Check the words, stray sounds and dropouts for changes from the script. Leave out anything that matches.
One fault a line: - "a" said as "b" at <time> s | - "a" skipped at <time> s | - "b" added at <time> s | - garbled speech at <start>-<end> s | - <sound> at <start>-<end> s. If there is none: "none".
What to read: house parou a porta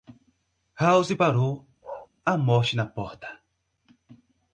- bark at 1.8-2.1 s
- "morte na" added at 2.4 s